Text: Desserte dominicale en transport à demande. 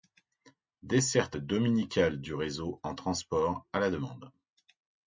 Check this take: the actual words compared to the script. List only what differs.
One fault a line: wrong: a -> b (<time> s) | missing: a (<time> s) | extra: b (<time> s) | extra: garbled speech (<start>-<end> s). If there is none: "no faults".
extra: du réseau (2.2 s)
extra: la (3.8 s)